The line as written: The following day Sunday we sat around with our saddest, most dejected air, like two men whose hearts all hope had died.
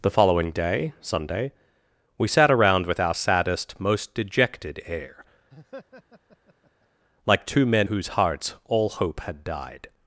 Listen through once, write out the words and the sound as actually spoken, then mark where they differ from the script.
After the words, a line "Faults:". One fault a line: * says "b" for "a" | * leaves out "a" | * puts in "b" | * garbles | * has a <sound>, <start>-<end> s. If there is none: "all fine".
The following day Sunday we sat around with our saddest, most dejected air, like two men whose hearts all hope had died.
Faults:
* has a laugh, 5.5-6.9 s